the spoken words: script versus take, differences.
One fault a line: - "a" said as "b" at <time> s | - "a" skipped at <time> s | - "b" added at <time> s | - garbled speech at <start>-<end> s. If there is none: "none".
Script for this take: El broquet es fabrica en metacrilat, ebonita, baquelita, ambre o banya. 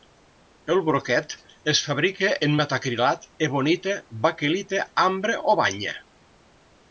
none